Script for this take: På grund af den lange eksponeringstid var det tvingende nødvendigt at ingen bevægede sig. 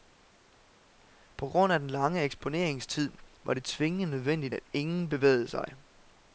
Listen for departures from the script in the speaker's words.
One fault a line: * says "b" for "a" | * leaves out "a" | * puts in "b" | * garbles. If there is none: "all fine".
all fine